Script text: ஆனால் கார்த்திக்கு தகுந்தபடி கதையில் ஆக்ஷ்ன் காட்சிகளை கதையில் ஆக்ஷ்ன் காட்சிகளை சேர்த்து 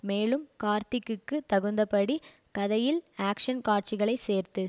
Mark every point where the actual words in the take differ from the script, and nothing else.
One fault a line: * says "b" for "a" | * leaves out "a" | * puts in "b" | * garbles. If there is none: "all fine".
* says "மேலும்" for "ஆனால்"
* leaves out "கதையில் ஆக்ஷ்ன் காட்சிகளை"